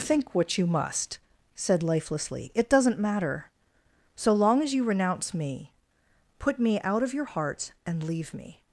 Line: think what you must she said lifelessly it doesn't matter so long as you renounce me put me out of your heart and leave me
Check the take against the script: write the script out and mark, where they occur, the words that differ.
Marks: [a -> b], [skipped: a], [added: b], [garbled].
think what you must [skipped: she] said lifelessly it doesn't matter so long as you renounce me put me out of your heart and leave me